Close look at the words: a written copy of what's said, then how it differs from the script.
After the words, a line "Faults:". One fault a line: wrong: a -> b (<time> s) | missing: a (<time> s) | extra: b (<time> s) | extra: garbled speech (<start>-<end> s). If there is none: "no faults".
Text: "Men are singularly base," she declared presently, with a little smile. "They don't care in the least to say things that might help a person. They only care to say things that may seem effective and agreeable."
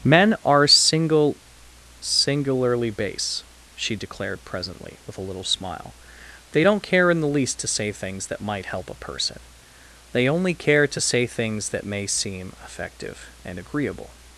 "Men are single singularly base," she declared presently, with a little smile. "They don't care in the least to say things that might help a person. They only care to say things that may seem effective and agreeable."
Faults:
extra: single (0.7 s)